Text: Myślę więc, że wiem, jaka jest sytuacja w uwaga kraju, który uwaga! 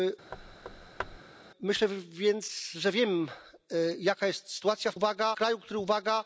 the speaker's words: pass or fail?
pass